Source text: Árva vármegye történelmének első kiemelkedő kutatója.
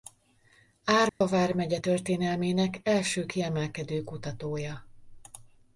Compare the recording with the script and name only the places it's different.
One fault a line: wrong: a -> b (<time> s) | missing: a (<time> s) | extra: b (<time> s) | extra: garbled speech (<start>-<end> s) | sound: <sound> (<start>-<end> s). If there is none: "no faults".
sound: dropout (1.1-1.2 s)